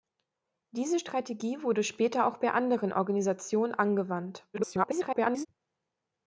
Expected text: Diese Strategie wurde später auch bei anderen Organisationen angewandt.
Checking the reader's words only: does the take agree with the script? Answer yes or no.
no